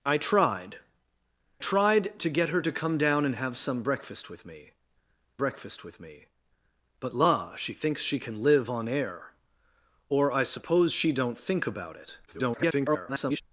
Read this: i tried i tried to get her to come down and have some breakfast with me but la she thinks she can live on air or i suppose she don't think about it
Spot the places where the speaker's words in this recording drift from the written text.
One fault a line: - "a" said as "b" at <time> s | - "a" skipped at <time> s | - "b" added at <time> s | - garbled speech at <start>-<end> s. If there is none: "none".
- "i" skipped at 0.8 s
- "breakfast with me" added at 5.4 s
- garbled speech at 12.3-13.4 s